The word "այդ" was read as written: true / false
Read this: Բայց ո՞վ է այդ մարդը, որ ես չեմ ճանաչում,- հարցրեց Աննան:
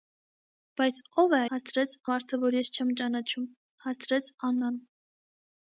false